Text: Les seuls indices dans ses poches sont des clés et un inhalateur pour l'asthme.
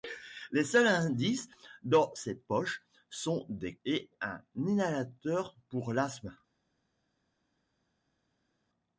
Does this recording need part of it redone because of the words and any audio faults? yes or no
yes